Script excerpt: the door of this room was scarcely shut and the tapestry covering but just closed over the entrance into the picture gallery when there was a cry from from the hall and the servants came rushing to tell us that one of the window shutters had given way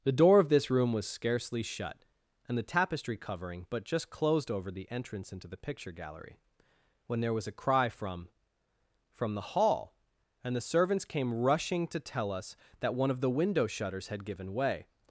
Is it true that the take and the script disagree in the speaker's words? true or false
false